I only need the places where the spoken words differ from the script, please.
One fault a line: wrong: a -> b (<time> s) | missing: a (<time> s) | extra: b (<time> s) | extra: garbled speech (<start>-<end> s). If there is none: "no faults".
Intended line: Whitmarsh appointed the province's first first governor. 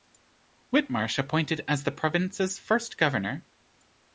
extra: as (1.7 s)
missing: first (3.0 s)